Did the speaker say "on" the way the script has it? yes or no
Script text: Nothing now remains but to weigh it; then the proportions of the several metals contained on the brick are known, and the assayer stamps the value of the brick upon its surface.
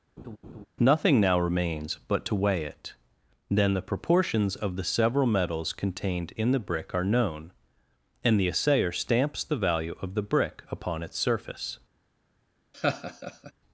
no